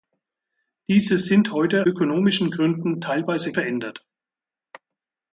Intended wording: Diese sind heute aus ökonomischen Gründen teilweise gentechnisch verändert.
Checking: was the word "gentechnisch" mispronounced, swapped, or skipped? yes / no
yes